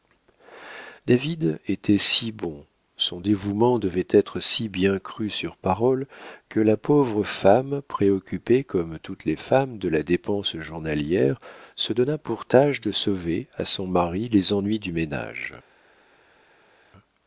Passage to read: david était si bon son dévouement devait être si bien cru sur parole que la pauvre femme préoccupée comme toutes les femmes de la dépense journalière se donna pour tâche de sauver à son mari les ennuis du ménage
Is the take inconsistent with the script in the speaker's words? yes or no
no